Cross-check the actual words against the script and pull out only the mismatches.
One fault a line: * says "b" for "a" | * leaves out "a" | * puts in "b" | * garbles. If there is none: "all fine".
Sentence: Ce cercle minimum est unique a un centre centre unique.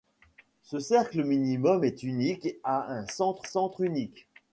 all fine